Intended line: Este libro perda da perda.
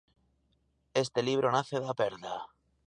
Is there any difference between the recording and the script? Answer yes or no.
yes